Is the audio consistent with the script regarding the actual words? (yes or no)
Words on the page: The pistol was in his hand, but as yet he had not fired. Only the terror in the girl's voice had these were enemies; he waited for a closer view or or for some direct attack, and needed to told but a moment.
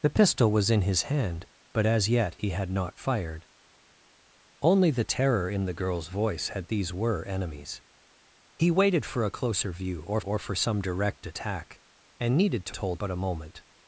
yes